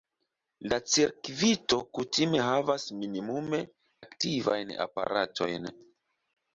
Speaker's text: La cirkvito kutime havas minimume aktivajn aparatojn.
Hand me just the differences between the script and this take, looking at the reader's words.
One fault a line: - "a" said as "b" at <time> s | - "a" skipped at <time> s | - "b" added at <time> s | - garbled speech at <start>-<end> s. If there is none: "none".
none